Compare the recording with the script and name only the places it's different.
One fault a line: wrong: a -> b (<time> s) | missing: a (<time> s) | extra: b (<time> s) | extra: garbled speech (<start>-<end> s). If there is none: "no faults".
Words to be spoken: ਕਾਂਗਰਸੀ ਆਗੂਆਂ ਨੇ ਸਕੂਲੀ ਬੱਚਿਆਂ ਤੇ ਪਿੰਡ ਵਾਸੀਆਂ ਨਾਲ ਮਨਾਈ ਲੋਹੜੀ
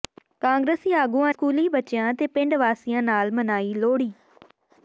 missing: ਨੇ (1.3 s)